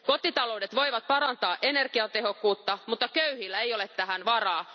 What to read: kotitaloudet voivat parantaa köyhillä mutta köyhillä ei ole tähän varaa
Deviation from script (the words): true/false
true